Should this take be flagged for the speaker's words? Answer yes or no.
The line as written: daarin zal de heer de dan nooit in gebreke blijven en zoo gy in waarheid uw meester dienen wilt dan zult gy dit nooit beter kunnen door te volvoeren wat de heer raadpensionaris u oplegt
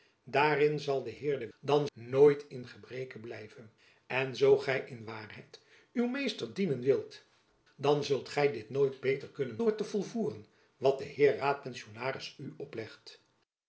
no